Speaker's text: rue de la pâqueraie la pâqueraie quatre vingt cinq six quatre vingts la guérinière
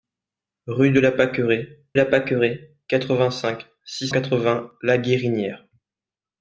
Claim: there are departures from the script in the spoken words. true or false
false